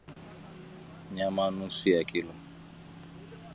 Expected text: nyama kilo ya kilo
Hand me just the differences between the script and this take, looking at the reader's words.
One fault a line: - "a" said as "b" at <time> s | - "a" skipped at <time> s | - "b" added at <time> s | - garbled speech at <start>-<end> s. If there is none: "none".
- "kilo" said as "nusu" at 1.5 s